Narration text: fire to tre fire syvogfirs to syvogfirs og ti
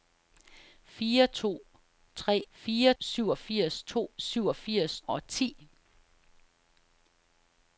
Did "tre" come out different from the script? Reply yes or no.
no